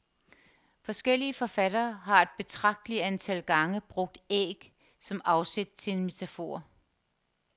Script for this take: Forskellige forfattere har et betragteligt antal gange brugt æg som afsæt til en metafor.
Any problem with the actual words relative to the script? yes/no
no